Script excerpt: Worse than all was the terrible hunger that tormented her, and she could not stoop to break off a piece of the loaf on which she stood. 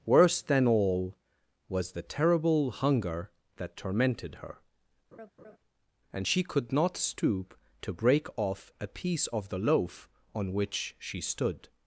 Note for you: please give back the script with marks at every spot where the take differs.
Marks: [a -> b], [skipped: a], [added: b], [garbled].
Worse than all was the terrible hunger that tormented her, and she could not stoop to break off a piece of the loaf on which she stood.